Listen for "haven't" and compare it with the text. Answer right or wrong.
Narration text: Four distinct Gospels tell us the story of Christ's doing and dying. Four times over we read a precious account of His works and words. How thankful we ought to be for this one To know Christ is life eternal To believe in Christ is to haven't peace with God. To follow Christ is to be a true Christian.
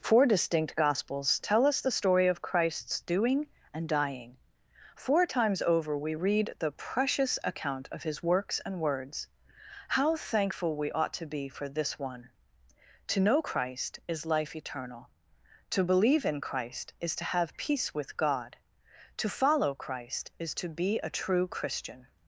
wrong